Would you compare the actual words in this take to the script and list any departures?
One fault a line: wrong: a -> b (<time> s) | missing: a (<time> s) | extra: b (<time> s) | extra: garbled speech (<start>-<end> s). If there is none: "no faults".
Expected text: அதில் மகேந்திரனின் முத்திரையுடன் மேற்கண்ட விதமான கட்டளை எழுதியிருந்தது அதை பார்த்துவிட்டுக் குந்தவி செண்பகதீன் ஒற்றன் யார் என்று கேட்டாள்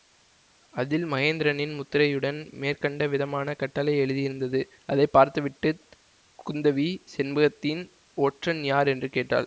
no faults